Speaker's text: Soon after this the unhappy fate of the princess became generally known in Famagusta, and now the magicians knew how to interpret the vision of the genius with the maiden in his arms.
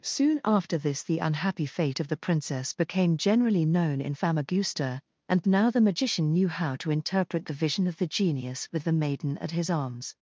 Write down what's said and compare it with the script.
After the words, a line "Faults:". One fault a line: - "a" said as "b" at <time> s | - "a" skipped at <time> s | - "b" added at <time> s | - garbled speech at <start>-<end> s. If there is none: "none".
Soon after this the unhappy fate of the princess became generally known in Famagusta, and now the magician knew how to interpret the vision of the genius with the maiden at his arms.
Faults:
- "magicians" said as "magician" at 5.8 s
- "in" said as "at" at 9.4 s